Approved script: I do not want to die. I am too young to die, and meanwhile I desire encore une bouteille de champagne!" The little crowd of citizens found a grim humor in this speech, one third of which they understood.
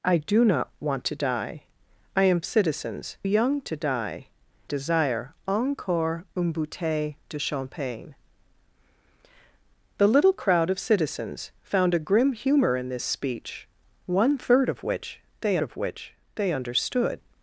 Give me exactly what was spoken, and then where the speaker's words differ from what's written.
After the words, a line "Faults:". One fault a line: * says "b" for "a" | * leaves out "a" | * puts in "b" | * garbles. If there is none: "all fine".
I do not want to die. I am citizens young to die, desire encore une bouteille de champagne!" The little crowd of citizens found a grim humor in this speech, one third of which they of which they understood.
Faults:
* says "citizens" for "too"
* leaves out "and meanwhile I"
* puts in "of which they"